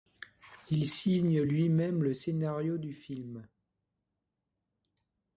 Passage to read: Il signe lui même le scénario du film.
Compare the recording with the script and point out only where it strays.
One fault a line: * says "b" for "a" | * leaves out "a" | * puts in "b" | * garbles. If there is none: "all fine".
all fine